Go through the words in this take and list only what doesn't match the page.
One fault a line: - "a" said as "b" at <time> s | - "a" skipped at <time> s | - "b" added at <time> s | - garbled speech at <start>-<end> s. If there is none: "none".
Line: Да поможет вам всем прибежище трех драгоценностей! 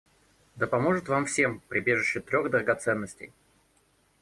none